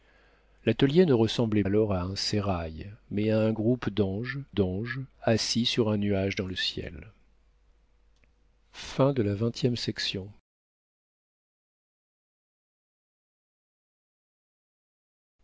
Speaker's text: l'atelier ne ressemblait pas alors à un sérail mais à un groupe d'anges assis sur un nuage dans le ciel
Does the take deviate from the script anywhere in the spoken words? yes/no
yes